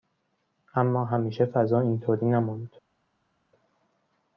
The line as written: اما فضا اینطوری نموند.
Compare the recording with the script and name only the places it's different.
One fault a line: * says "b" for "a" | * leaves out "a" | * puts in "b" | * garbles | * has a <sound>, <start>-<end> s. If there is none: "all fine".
* puts in "همیشه"